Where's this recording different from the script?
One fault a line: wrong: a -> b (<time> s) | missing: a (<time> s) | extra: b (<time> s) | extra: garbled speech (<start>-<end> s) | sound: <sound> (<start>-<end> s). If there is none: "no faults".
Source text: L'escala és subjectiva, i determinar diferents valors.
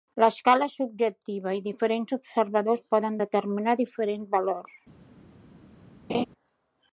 extra: diferents observadors poden (1.7 s)
sound: laugh (6.1-6.3 s)